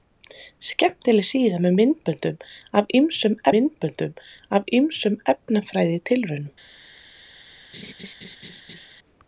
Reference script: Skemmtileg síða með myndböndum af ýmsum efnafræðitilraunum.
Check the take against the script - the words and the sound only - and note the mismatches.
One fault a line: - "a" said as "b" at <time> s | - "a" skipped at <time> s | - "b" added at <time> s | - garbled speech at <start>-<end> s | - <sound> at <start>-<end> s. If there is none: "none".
- "myndböndum af ýmsum" added at 3.6 s
- laugh at 7.7-8.9 s